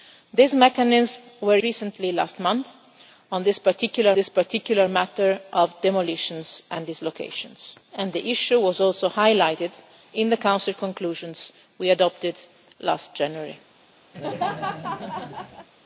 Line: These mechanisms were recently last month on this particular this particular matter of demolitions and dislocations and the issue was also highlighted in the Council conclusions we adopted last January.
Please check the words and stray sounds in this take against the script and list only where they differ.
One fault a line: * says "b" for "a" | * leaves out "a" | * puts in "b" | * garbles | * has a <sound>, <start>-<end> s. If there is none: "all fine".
* has a laugh, 14.1-15.7 s